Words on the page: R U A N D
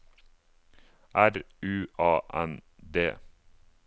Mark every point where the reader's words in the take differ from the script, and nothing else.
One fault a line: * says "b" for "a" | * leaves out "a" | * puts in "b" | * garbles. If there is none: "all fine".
all fine